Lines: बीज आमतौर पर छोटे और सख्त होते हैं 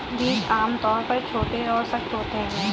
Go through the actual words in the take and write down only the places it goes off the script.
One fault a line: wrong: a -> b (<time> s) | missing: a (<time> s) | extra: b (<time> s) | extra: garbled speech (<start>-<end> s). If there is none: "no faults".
no faults